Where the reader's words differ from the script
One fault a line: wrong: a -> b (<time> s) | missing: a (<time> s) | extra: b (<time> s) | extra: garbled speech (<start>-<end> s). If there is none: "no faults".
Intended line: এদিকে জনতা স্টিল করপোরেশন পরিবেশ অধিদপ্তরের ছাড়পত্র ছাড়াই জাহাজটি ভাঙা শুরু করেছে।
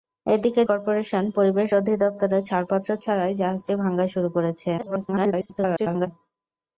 missing: জনতা স্টিল (0.6 s)
extra: garbled speech (4.8-6.1 s)